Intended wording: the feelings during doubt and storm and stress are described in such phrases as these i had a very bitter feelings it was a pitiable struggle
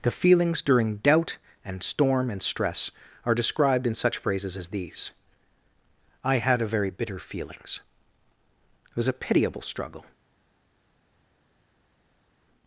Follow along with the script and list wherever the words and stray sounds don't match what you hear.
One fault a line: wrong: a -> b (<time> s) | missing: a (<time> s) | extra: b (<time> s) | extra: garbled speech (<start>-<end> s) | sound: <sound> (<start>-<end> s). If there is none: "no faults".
no faults